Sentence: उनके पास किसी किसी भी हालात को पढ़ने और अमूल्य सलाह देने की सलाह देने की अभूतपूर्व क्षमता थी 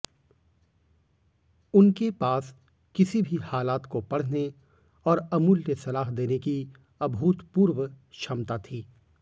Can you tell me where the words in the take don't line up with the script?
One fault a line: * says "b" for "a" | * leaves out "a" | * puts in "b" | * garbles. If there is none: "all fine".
* leaves out "किसी"
* leaves out "सलाह देने की"